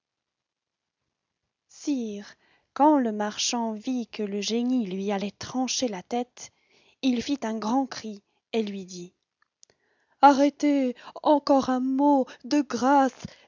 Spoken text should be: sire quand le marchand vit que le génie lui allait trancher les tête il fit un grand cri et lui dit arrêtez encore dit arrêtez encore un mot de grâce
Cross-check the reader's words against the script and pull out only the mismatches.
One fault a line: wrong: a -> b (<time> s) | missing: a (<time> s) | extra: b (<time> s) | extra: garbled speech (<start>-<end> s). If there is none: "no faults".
wrong: les -> la (5.9 s)
missing: dit arrêtez encore (11.7 s)